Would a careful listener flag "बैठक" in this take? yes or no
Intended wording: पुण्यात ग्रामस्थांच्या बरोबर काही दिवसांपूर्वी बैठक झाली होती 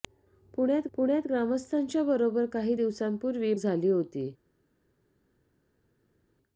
yes